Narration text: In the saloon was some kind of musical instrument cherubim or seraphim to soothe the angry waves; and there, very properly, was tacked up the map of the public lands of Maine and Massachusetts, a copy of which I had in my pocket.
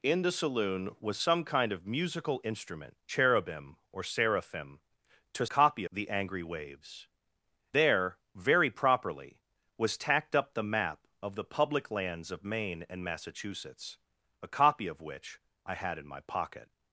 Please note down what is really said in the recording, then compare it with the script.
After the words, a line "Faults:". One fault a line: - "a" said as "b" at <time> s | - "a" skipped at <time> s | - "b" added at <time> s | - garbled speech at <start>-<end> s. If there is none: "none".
In the saloon was some kind of musical instrument cherubim or seraphim to copy the angry waves; there, very properly, was tacked up the map of the public lands of Maine and Massachusetts, a copy of which I had in my pocket.
Faults:
- "soothe" said as "copy" at 5.4 s
- "and" skipped at 7.1 s